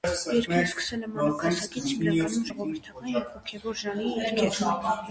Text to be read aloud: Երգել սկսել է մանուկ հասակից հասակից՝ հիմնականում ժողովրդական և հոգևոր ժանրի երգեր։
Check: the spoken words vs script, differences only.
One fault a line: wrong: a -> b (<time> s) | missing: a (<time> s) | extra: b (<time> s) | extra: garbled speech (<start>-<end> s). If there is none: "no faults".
missing: հասակից (1.9 s)